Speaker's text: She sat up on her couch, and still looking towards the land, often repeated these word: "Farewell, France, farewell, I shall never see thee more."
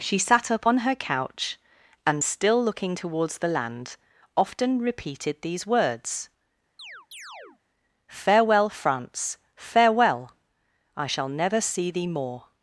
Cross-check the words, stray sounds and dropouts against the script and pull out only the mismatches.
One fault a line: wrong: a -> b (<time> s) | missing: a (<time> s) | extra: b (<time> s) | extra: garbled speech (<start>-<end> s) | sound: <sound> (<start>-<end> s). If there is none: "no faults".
wrong: word -> words (5.7 s)
sound: chirp (6.8-7.6 s)